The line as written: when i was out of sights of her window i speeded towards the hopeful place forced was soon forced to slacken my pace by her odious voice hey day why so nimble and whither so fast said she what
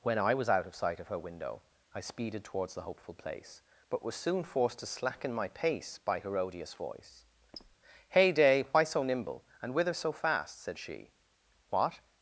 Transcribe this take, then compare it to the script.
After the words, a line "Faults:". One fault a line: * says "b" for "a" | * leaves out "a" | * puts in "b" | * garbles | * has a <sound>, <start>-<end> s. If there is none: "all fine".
when i was out of sight of her window i speeded towards the hopeful place but was soon forced to slacken my pace by her odious voice hey day why so nimble and whither so fast said she what
Faults:
* says "sight" for "sights"
* says "but" for "forced"
* has a squeak, 7.5-7.8 s